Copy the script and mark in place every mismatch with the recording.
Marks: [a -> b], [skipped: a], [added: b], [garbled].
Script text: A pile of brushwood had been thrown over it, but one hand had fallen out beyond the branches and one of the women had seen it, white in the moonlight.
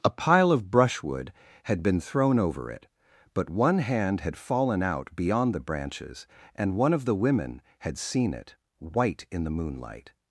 A pile of brushwood had been thrown over it, but one hand had fallen out beyond the branches and one of the women had seen it, white in the moonlight.